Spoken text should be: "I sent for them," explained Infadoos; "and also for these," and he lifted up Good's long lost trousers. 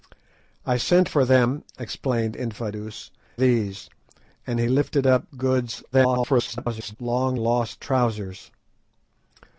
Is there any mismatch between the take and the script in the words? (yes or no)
yes